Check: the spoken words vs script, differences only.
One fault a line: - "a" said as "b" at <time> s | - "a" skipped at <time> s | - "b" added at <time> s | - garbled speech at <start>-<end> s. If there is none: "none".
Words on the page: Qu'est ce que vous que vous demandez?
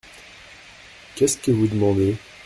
- "que vous" skipped at 1.7 s